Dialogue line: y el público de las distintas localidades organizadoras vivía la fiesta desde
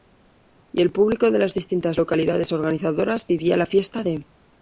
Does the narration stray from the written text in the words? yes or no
yes